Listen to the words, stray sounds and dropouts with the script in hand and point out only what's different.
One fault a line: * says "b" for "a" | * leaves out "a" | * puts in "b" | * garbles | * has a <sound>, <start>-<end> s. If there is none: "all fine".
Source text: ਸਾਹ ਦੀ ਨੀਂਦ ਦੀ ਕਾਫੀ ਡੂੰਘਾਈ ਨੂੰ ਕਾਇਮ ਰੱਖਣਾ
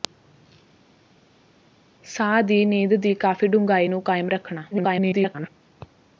* garbles